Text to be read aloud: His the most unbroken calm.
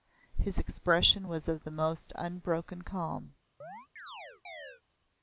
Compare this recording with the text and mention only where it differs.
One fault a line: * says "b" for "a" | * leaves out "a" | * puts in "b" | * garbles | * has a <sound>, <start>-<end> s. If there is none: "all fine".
* puts in "expression was of"
* has a chirp, 3.6-4.8 s